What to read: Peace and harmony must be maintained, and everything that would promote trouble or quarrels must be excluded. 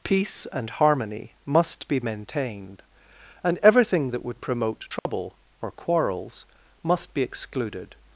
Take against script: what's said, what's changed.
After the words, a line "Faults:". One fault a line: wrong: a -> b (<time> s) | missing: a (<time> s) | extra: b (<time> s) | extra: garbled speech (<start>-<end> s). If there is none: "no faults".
Peace and harmony must be maintained, and everything that would promote trouble or quarrels must be excluded.
Faults:
no faults